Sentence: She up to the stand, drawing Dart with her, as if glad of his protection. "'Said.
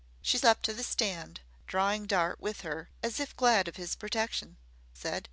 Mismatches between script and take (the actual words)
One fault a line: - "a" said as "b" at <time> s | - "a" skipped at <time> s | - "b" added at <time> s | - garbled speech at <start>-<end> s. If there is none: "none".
none